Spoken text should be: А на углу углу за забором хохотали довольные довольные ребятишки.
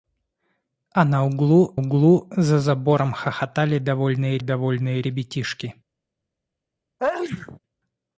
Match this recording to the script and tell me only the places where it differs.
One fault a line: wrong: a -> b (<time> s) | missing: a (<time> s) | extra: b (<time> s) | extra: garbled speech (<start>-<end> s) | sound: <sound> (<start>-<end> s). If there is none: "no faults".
sound: sneeze (7.0-7.6 s)